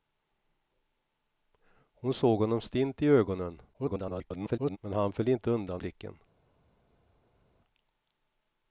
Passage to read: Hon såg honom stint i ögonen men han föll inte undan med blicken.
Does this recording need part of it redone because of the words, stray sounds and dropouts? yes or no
yes